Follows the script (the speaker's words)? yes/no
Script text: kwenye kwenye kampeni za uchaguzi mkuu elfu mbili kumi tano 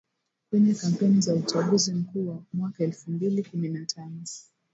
no